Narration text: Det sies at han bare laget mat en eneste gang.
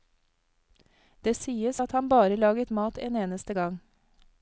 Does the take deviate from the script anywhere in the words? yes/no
no